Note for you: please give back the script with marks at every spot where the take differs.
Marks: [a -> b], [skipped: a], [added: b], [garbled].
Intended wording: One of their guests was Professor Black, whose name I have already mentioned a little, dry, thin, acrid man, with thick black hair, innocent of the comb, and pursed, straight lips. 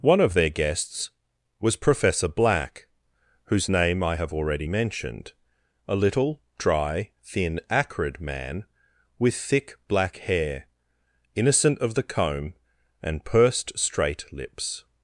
One of their guests was Professor Black, whose name I have already mentioned a little, dry, thin, acrid man, with thick black hair, innocent of the comb, and pursed, straight lips.